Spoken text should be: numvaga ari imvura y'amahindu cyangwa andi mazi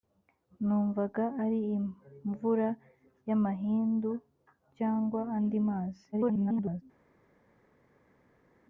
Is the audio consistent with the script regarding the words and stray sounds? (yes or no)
no